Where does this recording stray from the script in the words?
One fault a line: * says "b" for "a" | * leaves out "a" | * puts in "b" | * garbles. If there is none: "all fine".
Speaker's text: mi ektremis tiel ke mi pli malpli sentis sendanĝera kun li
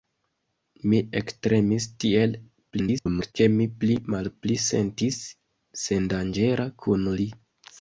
* garbles